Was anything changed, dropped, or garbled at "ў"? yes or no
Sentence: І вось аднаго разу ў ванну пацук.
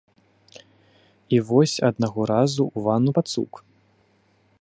no